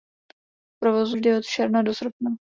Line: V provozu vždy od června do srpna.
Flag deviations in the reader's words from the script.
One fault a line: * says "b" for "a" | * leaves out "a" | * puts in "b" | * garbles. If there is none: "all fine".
all fine